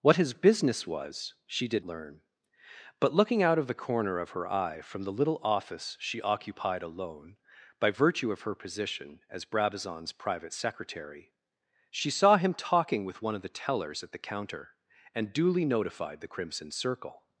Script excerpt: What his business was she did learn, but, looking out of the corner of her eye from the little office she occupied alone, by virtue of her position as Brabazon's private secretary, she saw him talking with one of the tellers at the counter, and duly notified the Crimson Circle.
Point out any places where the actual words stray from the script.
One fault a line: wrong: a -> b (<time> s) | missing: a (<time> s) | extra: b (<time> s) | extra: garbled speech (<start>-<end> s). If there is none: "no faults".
no faults